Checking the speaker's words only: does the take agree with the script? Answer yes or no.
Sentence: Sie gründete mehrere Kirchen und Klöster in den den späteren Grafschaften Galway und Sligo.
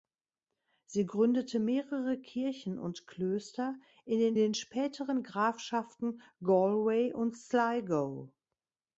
yes